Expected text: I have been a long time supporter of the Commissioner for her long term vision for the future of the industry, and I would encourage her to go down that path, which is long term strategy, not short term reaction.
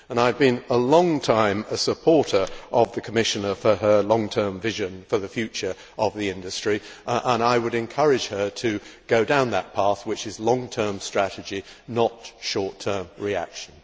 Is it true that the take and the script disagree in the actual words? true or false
false